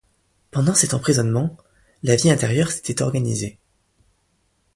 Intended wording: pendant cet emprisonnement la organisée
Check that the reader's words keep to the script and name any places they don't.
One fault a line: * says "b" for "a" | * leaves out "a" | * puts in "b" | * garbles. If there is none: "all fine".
* puts in "vie intérieure s'était"